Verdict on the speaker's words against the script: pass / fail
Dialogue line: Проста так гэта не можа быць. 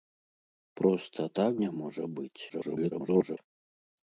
fail